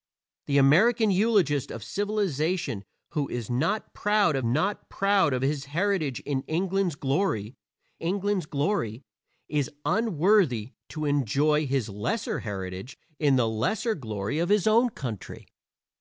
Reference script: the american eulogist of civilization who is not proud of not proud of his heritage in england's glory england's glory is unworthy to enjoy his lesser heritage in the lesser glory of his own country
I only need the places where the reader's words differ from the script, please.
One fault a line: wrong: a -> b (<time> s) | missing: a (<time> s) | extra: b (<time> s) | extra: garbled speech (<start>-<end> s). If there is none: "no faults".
no faults